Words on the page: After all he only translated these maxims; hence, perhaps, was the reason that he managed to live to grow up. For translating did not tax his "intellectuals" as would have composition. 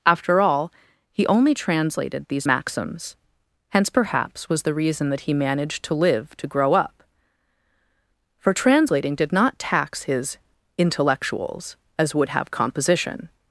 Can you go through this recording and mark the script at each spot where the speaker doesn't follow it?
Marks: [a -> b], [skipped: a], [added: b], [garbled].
After all he only translated these maxims; hence, perhaps, was the reason that he managed to live to grow up. For translating did not tax his "intellectuals" as would have composition.